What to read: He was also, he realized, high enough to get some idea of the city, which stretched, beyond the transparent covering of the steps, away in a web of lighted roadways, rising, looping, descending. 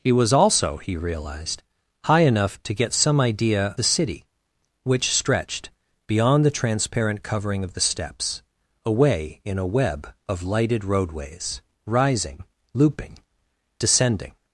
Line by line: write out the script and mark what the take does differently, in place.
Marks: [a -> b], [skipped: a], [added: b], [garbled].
He was also, he realized, high enough to get some idea [skipped: of] the city, which stretched, beyond the transparent covering of the steps, away in a web of lighted roadways, rising, looping, descending.